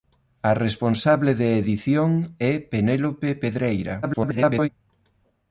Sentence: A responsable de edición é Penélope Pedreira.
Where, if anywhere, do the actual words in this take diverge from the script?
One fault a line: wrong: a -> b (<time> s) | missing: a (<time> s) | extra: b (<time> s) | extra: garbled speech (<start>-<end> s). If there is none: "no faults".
extra: garbled speech (4.0-4.7 s)